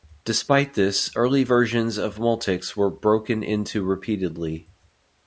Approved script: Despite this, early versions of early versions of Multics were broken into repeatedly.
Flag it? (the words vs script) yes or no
yes